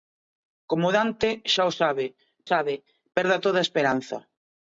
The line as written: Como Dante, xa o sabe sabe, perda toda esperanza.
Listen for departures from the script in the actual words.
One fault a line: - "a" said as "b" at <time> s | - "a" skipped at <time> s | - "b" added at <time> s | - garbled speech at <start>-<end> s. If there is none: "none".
none